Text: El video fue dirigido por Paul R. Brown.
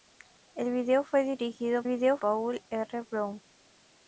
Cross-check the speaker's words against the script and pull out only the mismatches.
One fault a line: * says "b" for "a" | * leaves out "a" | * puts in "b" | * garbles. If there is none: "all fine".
* says "video" for "por"